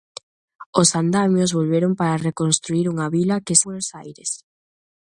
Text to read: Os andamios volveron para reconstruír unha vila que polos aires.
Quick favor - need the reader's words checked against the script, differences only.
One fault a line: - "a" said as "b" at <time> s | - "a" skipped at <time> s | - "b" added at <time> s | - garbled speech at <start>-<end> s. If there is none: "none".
none